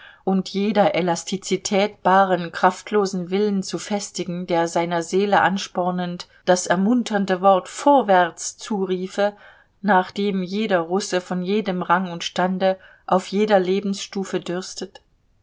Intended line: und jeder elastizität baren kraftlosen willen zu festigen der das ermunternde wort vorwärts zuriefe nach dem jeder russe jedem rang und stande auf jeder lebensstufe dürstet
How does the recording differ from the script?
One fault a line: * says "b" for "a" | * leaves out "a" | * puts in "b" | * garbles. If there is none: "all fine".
* puts in "seiner seele anspornend"
* puts in "von"